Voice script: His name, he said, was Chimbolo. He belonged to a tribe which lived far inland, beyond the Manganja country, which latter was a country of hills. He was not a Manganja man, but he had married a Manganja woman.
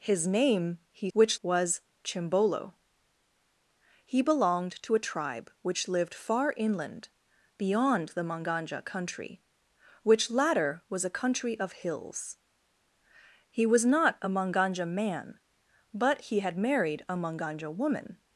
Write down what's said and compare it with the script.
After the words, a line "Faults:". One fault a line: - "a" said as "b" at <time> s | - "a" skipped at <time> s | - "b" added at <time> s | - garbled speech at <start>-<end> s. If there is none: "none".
His name, he which, was Chimbolo. He belonged to a tribe which lived far inland, beyond the Manganja country, which latter was a country of hills. He was not a Manganja man, but he had married a Manganja woman.
Faults:
- "said" said as "which" at 1.1 s